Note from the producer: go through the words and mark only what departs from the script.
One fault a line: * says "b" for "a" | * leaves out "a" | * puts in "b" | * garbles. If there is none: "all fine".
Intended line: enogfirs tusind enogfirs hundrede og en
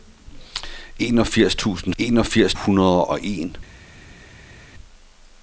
all fine